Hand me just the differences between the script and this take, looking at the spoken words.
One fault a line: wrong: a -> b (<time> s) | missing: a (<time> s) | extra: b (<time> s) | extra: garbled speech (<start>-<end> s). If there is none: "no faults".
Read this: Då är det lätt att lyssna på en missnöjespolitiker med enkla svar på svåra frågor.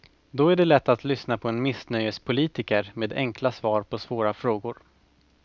no faults